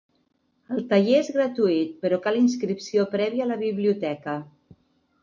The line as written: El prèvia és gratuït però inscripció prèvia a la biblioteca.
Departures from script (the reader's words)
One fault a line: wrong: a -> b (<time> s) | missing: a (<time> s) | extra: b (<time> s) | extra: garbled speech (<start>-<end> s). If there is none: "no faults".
wrong: prèvia -> taller (0.9 s)
extra: cal (2.3 s)